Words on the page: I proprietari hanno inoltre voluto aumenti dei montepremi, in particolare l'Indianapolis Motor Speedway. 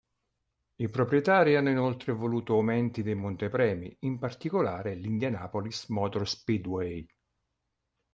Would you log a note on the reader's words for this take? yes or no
no